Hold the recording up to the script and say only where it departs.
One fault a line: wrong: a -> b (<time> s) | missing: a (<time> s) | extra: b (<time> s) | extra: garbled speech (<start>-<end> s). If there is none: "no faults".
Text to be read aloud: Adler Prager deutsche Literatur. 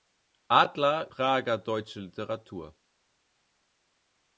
no faults